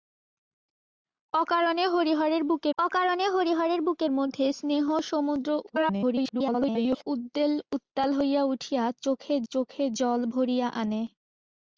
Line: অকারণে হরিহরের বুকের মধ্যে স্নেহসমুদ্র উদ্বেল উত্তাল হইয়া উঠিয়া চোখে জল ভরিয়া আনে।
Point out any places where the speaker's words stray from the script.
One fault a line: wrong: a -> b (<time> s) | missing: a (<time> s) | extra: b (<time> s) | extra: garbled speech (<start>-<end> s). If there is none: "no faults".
extra: অকারণে হরিহরের বুকের (2.8 s)
extra: garbled speech (5.7-7.1 s)
extra: চোখে (9.5 s)